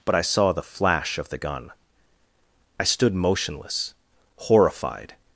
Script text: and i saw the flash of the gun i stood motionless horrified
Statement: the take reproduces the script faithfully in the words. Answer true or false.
false